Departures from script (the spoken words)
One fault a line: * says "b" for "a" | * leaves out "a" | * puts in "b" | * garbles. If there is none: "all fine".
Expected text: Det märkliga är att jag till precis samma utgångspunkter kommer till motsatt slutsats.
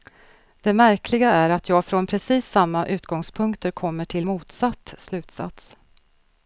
* says "från" for "till"